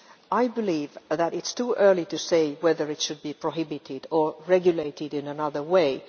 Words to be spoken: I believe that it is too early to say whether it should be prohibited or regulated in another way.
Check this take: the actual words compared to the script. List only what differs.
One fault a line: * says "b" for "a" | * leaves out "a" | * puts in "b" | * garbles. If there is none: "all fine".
all fine